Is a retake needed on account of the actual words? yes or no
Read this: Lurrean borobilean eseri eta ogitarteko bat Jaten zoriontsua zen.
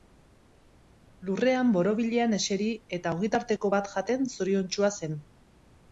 no